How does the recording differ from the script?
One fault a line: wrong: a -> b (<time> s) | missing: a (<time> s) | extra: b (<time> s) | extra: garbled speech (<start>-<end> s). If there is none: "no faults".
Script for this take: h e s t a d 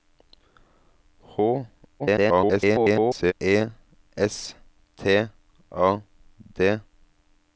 extra: garbled speech (2.0-3.3 s)